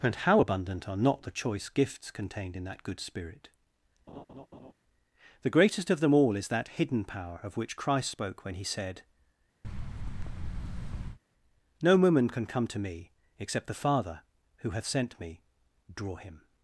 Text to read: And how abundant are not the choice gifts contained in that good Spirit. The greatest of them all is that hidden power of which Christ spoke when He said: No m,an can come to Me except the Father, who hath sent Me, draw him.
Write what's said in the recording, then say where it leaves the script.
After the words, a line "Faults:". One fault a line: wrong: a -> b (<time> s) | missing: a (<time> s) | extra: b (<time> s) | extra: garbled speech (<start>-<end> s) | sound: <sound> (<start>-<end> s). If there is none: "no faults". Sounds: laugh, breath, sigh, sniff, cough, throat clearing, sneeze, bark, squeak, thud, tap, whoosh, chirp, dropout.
And how abundant are not the choice gifts contained in that good Spirit. The greatest of them all is that hidden power of which Christ spoke when He said: No woman can come to Me except the Father, who hath sent Me, draw him.
Faults:
sound: laugh (4.1-4.7 s)
sound: thud (9.6-11.2 s)
wrong: m,an -> woman (12.0 s)